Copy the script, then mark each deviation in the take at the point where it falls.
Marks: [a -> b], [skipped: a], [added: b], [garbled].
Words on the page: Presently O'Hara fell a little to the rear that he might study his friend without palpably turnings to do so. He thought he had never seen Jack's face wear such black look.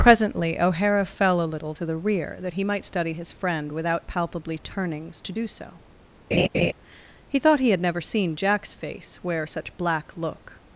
Presently O'Hara fell a little to the rear that he might study his friend without palpably turnings to do so. He thought he had never seen Jack's face wear such black look.